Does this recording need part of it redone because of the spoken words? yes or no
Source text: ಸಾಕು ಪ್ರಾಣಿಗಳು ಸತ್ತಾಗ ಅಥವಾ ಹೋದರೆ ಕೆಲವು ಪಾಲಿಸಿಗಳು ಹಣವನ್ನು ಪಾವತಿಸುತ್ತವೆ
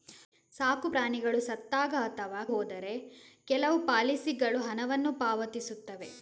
no